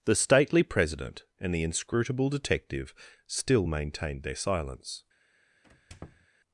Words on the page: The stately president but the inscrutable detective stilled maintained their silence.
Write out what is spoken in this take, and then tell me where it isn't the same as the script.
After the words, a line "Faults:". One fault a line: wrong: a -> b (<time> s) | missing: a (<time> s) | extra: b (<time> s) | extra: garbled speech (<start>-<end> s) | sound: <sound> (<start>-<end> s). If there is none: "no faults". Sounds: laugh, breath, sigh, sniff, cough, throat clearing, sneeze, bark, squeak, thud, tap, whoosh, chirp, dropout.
The stately president and the inscrutable detective still maintained their silence.
Faults:
wrong: but -> and (1.4 s)
wrong: stilled -> still (3.3 s)
sound: squeak (5.6-6.3 s)